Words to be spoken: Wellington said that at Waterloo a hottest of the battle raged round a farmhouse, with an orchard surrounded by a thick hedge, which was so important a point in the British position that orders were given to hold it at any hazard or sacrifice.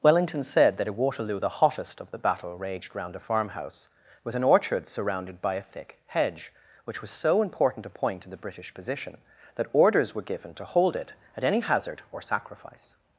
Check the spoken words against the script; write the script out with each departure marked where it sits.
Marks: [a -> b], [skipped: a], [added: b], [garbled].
Wellington said that at Waterloo [a -> the] hottest of the battle raged round a farmhouse, with an orchard surrounded by a thick hedge, which was so important a point in the British position that orders were given to hold it at any hazard or sacrifice.